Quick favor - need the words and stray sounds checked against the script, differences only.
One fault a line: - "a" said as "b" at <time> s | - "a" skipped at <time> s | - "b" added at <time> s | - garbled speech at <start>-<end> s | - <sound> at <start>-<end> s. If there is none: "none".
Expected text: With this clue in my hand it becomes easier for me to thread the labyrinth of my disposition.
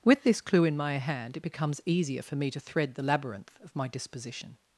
none